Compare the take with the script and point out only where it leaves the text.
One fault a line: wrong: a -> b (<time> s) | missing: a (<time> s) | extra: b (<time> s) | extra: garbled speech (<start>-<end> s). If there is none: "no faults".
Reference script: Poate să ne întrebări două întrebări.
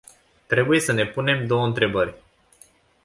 wrong: Poate -> Trebuie (0.5 s)
wrong: întrebări -> punem (1.1 s)